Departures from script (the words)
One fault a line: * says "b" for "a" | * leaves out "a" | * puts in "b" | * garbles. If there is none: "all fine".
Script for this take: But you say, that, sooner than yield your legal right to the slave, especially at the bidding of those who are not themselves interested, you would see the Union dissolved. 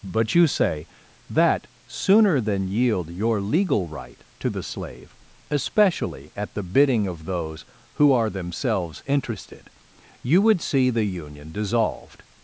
* leaves out "not"